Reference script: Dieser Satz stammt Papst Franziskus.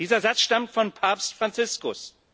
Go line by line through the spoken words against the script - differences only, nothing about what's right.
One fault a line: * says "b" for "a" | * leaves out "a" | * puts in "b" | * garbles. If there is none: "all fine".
* puts in "von"